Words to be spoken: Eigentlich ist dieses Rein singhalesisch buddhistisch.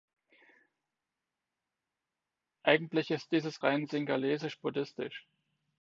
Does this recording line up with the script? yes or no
yes